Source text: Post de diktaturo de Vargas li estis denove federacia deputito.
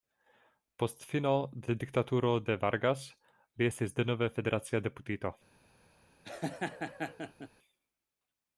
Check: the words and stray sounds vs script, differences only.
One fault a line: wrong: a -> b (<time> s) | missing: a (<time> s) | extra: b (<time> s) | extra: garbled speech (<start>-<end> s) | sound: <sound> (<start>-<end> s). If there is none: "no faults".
extra: fino (1.1 s)
sound: laugh (6.2-7.5 s)